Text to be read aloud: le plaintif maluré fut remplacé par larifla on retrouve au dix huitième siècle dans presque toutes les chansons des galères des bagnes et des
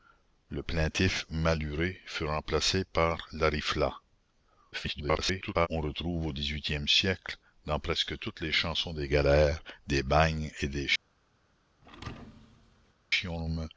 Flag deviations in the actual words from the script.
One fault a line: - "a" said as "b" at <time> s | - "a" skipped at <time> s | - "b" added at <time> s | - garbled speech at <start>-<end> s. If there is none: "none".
- garbled speech at 4.7-5.7 s